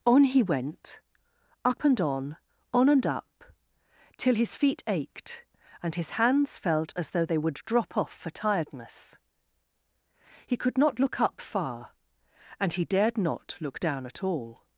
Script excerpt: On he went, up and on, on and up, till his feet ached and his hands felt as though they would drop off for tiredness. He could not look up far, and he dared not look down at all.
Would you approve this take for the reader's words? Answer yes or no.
yes